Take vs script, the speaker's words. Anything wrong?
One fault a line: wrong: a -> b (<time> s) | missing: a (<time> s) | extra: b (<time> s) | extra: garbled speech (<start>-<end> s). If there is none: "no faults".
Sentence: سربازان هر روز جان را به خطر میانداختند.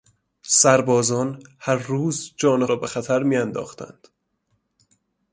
no faults